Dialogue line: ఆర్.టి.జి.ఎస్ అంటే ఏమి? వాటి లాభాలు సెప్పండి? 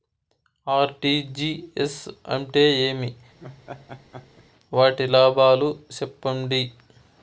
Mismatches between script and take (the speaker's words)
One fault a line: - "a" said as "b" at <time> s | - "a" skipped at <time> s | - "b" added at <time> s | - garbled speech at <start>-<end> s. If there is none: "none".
none